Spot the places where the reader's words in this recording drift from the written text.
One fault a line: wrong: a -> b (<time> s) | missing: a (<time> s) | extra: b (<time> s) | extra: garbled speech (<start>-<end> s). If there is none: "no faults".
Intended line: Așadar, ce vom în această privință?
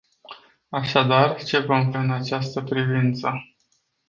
no faults